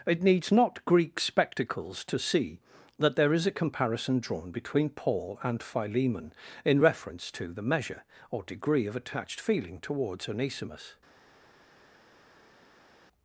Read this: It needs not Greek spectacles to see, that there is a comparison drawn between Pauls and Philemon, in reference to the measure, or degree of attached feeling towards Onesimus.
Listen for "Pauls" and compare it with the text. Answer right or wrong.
wrong